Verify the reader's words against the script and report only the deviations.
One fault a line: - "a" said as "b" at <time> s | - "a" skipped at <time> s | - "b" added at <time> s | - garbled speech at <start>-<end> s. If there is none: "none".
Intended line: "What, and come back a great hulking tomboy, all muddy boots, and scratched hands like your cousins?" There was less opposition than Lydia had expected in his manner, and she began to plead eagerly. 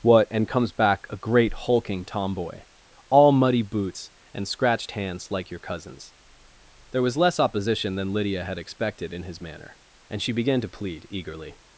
- "come" said as "comes" at 0.5 s